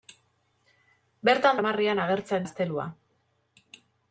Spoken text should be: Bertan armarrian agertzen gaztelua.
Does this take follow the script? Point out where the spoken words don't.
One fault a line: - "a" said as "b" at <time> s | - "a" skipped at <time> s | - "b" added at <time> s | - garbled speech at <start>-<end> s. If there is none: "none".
none